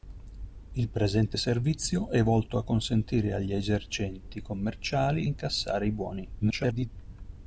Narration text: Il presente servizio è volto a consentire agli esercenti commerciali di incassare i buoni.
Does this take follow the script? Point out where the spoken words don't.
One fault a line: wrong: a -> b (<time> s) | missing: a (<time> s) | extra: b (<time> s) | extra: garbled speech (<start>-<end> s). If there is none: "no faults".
missing: di (5.3 s)
extra: garbled speech (6.4-6.9 s)